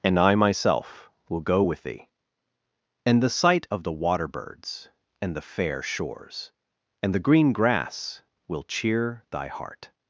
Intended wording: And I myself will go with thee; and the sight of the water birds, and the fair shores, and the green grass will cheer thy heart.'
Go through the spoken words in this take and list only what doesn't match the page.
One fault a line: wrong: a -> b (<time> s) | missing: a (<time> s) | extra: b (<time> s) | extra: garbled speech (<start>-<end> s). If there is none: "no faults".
no faults